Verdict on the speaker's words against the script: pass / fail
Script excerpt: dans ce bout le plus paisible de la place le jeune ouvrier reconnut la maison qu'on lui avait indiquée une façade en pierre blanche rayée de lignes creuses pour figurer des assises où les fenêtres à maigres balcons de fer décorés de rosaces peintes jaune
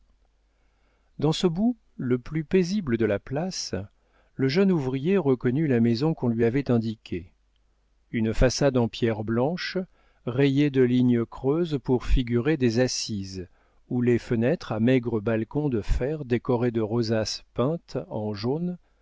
fail